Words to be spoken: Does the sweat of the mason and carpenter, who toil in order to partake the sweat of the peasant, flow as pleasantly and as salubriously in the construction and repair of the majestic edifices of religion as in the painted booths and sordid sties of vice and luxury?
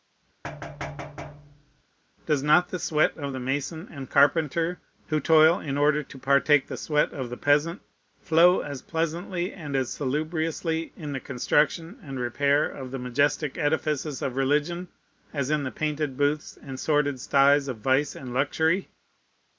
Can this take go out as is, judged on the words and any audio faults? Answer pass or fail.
fail